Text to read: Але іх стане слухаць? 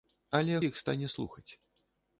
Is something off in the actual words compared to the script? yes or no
no